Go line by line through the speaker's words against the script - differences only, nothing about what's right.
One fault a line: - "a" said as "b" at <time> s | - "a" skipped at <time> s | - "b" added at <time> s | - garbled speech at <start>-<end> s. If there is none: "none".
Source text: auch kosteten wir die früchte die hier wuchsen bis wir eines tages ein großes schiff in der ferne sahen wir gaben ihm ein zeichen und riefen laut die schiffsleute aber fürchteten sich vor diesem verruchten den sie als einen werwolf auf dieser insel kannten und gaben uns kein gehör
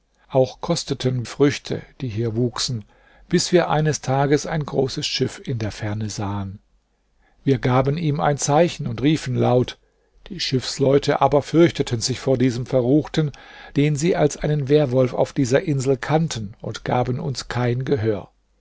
- "wir die" skipped at 1.3 s